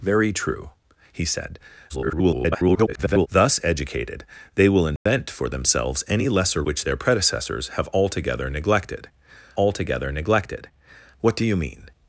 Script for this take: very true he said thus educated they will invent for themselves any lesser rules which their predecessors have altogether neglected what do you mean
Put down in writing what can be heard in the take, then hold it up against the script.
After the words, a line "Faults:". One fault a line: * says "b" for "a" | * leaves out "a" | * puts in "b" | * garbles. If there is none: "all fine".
very true he said [garbled] thus educated they will invent for themselves any lesser which their predecessors have altogether neglected altogether neglected what do you mean
Faults:
* garbles
* leaves out "rules"
* puts in "altogether neglected"